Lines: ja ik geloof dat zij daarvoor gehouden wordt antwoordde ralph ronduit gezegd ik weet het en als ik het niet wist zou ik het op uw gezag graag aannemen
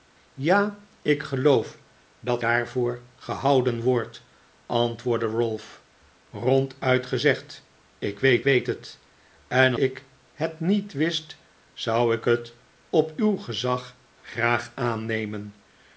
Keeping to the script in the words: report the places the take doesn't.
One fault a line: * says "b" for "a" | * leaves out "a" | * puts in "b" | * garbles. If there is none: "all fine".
* leaves out "zij"
* puts in "weet"
* leaves out "als"